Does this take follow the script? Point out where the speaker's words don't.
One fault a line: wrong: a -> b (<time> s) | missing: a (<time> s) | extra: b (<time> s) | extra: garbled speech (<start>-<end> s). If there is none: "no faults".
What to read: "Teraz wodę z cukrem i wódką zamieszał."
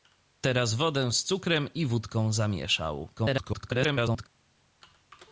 extra: garbled speech (3.2-4.3 s)